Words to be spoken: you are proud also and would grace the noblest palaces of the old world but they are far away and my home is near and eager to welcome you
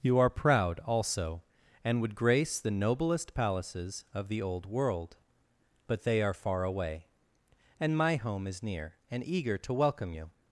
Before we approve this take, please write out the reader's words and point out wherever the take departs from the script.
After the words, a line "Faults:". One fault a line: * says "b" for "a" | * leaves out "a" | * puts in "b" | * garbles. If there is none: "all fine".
you are proud also and would grace the noblest palaces of the old world but they are far away and my home is near and eager to welcome you
Faults:
all fine